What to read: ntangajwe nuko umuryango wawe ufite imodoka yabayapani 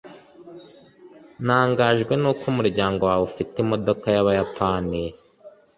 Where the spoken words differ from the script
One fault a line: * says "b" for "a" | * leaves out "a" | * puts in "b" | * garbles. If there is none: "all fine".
all fine